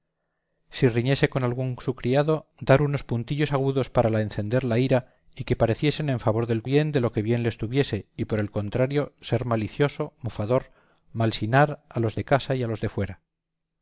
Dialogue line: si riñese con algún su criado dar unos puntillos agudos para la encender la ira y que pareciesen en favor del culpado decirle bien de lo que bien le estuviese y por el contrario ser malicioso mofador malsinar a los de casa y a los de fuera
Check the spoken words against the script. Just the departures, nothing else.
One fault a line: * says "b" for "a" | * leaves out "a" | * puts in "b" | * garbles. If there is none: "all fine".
* leaves out "culpado decirle"